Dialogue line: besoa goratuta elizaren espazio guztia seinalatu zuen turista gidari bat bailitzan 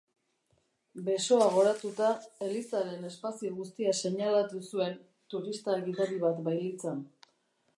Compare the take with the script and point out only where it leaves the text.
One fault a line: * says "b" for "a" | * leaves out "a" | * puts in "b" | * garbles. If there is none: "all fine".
all fine